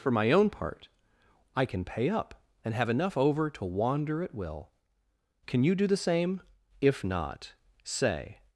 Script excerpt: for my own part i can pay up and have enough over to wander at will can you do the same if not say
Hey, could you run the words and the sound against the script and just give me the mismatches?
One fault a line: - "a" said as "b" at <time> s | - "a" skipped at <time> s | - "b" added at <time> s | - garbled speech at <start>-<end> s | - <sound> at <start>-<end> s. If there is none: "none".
none